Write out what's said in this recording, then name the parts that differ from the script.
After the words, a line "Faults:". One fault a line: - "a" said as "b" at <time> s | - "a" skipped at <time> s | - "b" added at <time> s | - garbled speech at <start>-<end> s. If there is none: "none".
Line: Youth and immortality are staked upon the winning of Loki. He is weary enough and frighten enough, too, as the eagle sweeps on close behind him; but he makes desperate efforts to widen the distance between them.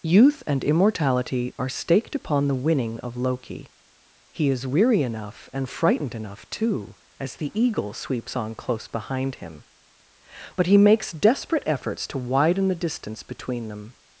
Youth and immortality are staked upon the winning of Loki. He is weary enough and frightened enough, too, as the eagle sweeps on close behind him; but he makes desperate efforts to widen the distance between them.
Faults:
- "frighten" said as "frightened" at 5.7 s